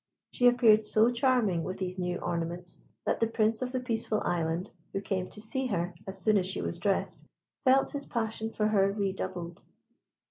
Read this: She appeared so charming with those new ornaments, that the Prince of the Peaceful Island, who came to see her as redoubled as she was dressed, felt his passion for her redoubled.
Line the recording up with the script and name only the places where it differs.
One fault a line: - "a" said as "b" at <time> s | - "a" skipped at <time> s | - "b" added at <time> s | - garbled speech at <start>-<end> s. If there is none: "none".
- "those" said as "these" at 1.8 s
- "redoubled" said as "soon" at 6.2 s